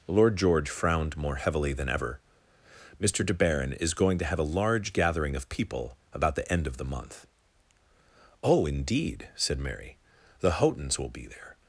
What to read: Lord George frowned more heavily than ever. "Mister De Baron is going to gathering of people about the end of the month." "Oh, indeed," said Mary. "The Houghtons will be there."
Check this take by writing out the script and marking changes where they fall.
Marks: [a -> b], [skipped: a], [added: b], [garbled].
Lord George frowned more heavily than ever. "Mister De Baron is going to [added: have a large] gathering of people about the end of the month." "Oh, indeed," said Mary. "The Houghtons will be there."